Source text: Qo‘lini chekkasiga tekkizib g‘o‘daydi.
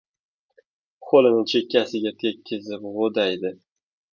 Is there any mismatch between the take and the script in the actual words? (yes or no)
no